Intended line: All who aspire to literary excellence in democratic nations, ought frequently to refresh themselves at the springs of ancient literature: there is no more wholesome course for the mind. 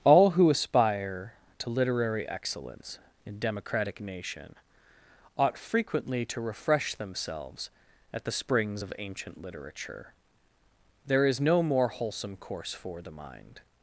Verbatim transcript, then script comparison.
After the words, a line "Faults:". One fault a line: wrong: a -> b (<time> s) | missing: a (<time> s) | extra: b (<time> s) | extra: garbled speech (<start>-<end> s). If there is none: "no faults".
All who aspire to literary excellence in democratic nation, ought frequently to refresh themselves at the springs of ancient literature: there is no more wholesome course for the mind.
Faults:
wrong: nations -> nation (4.0 s)